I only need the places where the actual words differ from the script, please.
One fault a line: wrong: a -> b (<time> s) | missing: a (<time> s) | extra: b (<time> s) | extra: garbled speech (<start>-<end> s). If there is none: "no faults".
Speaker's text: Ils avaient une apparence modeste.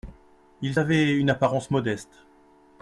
no faults